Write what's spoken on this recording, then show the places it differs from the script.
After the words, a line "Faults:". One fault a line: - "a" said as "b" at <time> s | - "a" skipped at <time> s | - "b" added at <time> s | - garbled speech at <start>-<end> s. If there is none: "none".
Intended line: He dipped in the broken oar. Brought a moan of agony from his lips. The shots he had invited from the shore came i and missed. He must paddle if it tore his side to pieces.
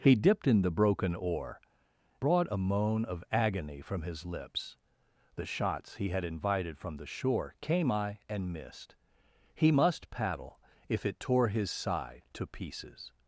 He dipped in the broken oar. Brought a moan of agony from his lips. The shots he had invited from the shore came i and missed. He must paddle if it tore his side to pieces.
Faults:
none